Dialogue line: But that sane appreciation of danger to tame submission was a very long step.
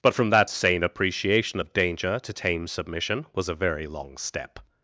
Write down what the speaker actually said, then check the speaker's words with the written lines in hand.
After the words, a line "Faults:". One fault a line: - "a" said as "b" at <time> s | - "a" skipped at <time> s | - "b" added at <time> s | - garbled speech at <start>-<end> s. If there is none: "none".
But from that sane appreciation of danger to tame submission was a very long step.
Faults:
- "from" added at 0.1 s